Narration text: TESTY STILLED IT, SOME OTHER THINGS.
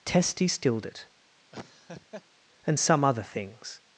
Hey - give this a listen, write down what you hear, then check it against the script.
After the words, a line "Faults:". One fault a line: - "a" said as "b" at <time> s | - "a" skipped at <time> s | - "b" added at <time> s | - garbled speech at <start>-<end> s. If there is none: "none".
TESTY STILLED IT, AND SOME OTHER THINGS.
Faults:
- "AND" added at 2.6 s